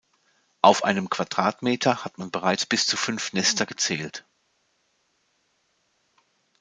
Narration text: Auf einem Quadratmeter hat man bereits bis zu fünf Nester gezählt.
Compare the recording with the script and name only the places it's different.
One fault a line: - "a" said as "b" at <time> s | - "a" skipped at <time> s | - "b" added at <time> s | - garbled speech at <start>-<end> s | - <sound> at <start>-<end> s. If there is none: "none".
none